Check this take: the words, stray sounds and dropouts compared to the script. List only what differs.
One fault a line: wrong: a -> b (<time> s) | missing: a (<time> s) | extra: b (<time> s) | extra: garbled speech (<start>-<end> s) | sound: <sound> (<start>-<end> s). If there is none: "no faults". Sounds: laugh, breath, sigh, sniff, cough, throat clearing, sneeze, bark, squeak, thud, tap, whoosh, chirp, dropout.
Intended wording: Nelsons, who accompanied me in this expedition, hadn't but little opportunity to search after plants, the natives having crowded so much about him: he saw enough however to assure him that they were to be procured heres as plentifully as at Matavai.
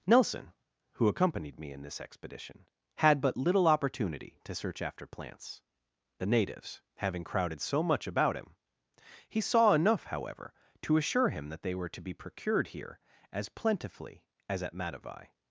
wrong: Nelsons -> Nelson (0.1 s)
wrong: hadn't -> had (3.0 s)
wrong: heres -> here (12.7 s)